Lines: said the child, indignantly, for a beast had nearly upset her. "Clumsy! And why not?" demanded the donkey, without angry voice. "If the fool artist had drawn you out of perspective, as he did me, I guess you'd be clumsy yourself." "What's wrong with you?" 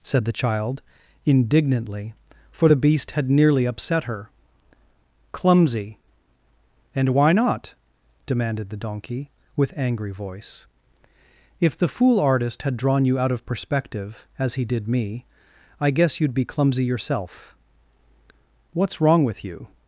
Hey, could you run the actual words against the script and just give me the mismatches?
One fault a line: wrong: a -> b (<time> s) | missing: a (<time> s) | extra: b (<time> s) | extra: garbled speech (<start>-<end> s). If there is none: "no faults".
wrong: a -> the (2.7 s)
wrong: without -> with (9.6 s)